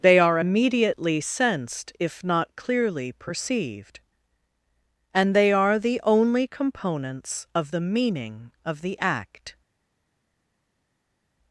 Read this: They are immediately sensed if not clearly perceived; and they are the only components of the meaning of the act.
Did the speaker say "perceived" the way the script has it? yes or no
yes